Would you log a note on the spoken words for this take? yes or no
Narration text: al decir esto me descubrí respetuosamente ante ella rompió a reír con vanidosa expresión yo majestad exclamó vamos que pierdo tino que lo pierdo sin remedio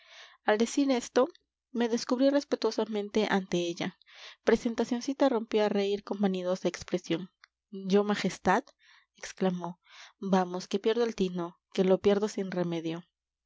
yes